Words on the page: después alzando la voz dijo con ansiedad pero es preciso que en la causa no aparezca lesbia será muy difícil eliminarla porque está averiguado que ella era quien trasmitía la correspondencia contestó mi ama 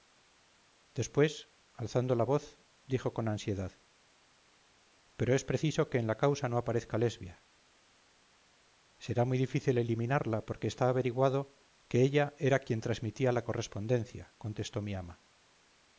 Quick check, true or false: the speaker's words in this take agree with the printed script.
true